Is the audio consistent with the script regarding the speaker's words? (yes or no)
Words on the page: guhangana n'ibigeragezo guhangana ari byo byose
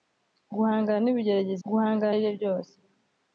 yes